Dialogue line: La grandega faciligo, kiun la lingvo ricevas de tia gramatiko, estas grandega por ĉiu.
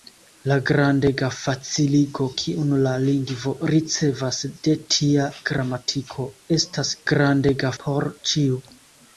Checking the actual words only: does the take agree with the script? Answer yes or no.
yes